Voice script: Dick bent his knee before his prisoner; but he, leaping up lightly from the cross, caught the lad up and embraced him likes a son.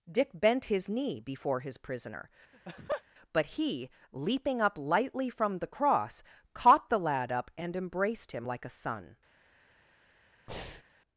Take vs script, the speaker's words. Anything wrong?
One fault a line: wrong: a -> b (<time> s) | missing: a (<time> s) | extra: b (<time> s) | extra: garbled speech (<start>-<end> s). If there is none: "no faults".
wrong: likes -> like (8.5 s)